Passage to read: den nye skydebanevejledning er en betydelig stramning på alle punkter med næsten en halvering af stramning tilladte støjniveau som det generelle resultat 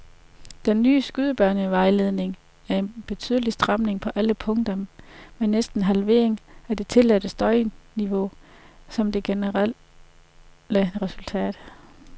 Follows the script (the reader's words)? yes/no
no